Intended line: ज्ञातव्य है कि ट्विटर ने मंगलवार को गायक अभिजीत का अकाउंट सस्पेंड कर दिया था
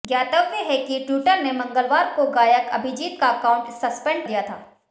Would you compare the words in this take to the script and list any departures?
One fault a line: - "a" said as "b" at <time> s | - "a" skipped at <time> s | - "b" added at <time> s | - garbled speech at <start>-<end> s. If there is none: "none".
- "कर" skipped at 4.2 s